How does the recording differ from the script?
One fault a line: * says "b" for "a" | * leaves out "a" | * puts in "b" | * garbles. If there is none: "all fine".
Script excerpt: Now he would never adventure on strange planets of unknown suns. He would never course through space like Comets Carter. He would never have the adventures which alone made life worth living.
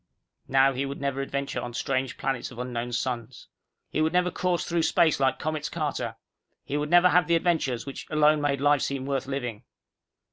* puts in "seem"